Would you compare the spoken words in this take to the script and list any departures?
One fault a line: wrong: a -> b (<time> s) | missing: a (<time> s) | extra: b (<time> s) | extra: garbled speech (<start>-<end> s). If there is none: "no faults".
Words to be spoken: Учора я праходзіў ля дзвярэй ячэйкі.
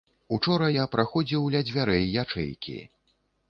no faults